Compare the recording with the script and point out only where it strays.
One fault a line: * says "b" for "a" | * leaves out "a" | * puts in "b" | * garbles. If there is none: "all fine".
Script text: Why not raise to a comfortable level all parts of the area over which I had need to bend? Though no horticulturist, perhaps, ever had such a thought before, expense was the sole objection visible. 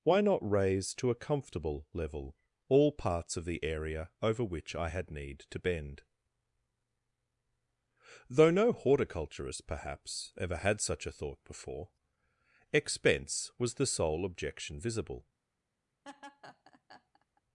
all fine